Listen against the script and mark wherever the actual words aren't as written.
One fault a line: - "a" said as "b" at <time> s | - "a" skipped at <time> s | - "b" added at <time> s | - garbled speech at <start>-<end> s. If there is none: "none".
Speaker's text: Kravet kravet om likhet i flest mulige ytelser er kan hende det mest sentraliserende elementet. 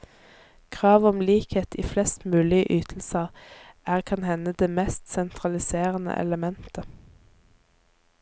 - "kravet" skipped at 1.1 s